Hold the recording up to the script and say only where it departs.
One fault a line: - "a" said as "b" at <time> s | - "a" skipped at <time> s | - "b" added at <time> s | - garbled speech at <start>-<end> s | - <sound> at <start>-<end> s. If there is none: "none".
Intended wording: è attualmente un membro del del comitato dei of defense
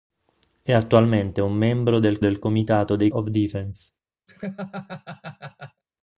- laugh at 4.3-5.8 s